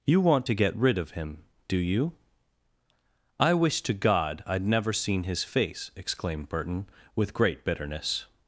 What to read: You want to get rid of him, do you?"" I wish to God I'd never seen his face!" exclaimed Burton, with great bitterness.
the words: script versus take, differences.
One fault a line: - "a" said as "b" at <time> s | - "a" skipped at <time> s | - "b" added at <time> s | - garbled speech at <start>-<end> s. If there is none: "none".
none